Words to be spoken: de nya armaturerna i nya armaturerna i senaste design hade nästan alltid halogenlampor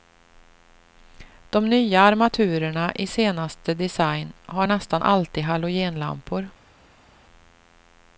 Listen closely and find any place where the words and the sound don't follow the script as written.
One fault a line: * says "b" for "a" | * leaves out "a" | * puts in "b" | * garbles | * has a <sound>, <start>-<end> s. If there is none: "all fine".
* leaves out "nya armaturerna i"
* says "har" for "hade"